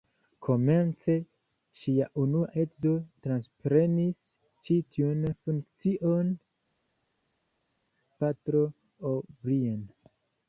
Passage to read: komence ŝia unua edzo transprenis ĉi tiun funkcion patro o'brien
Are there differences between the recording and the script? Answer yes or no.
no